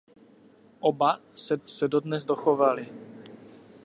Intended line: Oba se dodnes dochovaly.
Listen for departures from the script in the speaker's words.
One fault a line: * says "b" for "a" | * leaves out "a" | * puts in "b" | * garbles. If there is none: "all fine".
* puts in "se"